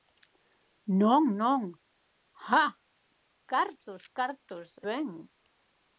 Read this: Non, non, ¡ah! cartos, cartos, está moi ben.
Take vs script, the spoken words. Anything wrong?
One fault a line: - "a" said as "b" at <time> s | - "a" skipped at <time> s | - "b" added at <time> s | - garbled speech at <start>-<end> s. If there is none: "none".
- "está moi" skipped at 4.7 s